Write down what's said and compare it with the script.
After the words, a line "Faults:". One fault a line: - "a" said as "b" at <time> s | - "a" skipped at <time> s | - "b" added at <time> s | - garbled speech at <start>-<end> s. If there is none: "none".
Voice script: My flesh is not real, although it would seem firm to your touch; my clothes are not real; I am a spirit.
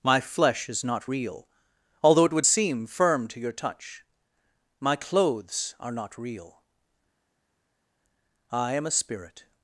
My flesh is not real, although it would seem firm to your touch; my clothes are not real; I am a spirit.
Faults:
none